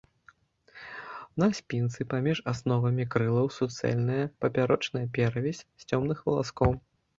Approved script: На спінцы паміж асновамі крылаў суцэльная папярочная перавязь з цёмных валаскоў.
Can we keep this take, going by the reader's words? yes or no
yes